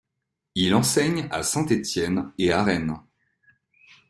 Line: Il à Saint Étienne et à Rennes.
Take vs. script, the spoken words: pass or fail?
fail